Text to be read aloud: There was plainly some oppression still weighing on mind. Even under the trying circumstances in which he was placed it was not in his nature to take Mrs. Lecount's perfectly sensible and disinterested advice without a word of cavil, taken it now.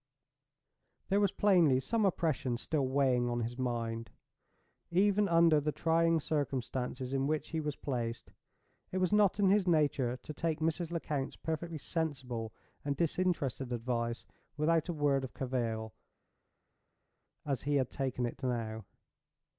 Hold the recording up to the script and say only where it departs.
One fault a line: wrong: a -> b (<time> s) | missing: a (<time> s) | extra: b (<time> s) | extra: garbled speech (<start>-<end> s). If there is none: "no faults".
extra: his (3.4 s)
extra: as he had (17.4 s)